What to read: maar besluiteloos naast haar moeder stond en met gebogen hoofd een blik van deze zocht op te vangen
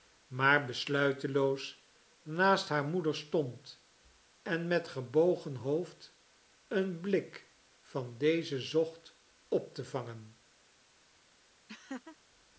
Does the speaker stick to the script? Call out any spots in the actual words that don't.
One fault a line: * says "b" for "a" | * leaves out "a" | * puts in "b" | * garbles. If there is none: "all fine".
all fine